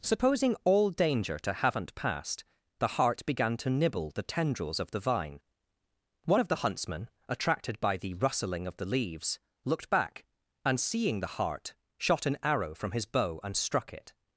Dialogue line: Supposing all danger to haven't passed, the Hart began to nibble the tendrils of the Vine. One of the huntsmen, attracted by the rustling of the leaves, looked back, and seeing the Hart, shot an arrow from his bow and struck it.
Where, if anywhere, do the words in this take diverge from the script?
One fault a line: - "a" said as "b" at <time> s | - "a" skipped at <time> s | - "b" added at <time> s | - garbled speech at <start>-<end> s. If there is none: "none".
none